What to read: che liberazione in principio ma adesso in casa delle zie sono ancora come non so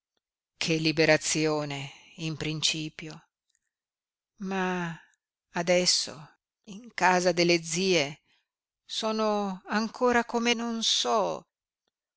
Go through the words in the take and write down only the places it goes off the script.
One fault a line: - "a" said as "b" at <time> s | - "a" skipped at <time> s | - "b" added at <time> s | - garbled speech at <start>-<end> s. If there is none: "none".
none